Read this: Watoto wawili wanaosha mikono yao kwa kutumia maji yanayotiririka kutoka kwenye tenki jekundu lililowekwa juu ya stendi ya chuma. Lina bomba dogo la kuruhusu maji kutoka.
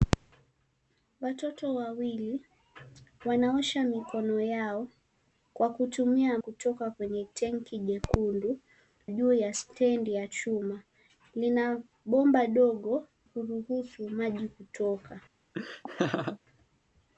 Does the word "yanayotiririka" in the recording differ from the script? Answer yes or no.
yes